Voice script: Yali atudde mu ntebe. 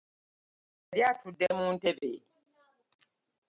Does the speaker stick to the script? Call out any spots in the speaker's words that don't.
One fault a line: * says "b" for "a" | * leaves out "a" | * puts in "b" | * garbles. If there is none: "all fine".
all fine